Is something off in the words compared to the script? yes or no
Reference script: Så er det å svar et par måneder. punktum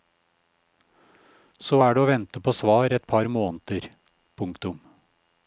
yes